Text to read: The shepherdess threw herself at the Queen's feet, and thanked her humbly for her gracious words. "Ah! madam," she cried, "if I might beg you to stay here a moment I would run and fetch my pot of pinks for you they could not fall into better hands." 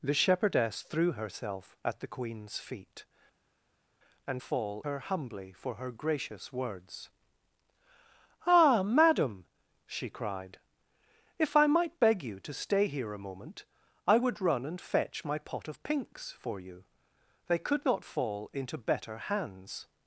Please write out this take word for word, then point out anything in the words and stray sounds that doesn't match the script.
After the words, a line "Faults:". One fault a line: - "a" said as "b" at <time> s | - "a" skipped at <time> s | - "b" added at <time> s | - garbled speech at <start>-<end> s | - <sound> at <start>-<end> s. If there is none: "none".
The shepherdess threw herself at the Queen's feet, and fall her humbly for her gracious words. "Ah! madam," she cried, "if I might beg you to stay here a moment I would run and fetch my pot of pinks for you they could not fall into better hands."
Faults:
- "thanked" said as "fall" at 4.4 s